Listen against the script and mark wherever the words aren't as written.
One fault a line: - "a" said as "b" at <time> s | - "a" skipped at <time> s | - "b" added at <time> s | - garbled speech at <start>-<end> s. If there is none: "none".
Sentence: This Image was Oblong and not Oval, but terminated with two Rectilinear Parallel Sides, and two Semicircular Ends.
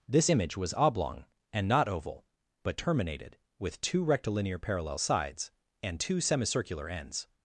none